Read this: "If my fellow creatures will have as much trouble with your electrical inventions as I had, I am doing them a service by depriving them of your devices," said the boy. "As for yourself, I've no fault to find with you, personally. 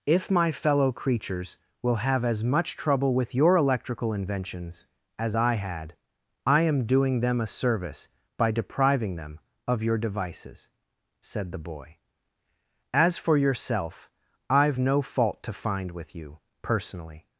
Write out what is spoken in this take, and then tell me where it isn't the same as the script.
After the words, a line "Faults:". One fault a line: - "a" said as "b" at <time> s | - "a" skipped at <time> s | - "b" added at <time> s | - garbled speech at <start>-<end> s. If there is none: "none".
"If my fellow creatures will have as much trouble with your electrical inventions as I had, I am doing them a service by depriving them of your devices," said the boy. "As for yourself, I've no fault to find with you, personally.
Faults:
none